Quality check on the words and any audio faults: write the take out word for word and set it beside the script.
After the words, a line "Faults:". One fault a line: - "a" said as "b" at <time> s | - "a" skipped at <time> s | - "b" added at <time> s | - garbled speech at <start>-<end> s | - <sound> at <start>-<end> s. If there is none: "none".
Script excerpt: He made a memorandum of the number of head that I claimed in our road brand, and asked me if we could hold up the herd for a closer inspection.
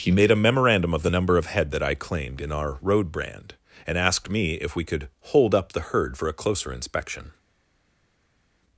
He made a memorandum of the number of head that I claimed in our road brand, and asked me if we could hold up the herd for a closer inspection.
Faults:
none